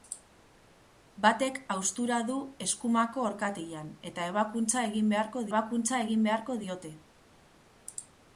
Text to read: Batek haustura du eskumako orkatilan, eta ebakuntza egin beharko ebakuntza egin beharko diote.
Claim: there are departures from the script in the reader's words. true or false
false